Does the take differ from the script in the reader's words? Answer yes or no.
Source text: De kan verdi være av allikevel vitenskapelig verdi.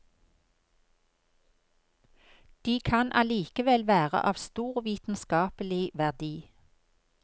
yes